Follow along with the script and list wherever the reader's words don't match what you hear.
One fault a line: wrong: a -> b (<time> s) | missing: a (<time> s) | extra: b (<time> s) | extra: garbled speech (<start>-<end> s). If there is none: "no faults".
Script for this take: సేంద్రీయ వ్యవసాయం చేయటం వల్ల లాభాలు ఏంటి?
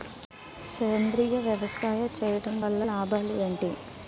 no faults